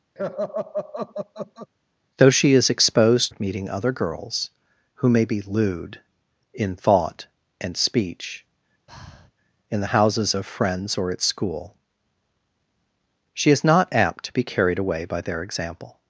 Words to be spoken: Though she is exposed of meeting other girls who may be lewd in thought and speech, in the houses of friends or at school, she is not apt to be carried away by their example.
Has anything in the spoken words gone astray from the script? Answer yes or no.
no